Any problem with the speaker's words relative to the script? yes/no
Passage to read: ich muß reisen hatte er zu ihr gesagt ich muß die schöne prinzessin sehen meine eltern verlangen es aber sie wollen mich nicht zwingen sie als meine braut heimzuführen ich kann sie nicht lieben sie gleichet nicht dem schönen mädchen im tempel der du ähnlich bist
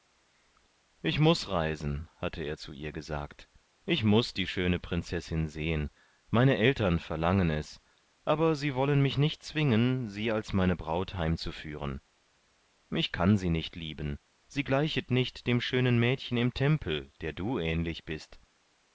no